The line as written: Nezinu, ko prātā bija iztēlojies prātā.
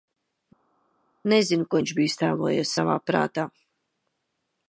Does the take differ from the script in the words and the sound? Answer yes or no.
yes